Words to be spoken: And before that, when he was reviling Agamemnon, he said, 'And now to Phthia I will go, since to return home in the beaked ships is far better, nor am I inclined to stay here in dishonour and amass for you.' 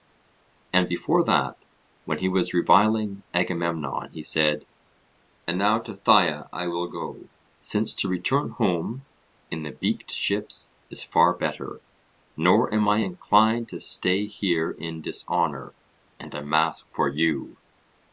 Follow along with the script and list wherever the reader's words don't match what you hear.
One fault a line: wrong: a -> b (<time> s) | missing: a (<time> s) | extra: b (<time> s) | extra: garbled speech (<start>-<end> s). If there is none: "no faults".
no faults